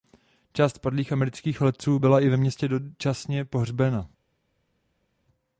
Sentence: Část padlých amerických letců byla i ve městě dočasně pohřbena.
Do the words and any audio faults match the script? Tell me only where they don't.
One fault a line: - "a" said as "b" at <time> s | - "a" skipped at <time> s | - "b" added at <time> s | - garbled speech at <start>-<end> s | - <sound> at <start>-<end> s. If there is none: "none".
none